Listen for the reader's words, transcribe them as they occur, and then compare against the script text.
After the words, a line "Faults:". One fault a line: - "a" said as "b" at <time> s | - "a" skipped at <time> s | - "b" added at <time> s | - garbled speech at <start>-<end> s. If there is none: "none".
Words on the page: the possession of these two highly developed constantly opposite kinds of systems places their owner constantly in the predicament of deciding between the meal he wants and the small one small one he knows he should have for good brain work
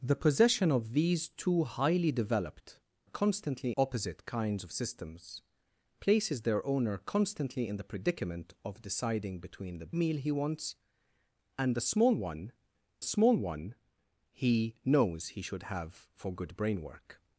the possession of these two highly developed constantly opposite kinds of systems places their owner constantly in the predicament of deciding between the meal he wants and the small one small one he knows he should have for good brain work
Faults:
none